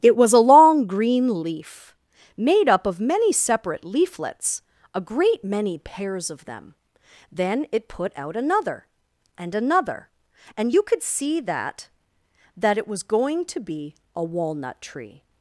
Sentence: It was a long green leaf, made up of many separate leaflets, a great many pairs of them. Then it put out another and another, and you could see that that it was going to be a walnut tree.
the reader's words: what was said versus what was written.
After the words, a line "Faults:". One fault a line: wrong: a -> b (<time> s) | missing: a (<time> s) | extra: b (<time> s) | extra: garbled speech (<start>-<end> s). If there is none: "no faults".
It was a long green leaf, made up of many separate leaflets, a great many pairs of them. Then it put out another and another, and you could see that that it was going to be a walnut tree.
Faults:
no faults